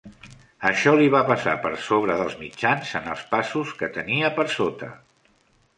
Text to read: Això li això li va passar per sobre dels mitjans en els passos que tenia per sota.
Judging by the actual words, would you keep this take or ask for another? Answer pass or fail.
fail